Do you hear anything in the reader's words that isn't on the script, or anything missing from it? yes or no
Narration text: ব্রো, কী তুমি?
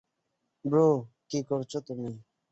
yes